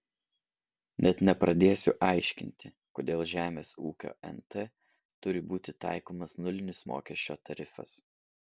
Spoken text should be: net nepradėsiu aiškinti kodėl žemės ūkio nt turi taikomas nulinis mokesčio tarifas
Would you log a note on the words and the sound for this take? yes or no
yes